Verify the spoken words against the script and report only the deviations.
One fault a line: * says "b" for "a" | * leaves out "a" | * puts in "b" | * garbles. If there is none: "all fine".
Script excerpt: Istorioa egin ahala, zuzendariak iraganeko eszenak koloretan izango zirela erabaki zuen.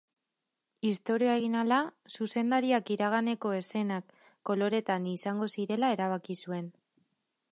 all fine